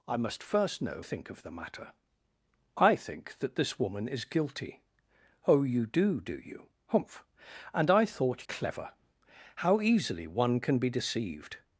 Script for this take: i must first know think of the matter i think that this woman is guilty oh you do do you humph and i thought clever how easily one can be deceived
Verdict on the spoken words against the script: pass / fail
pass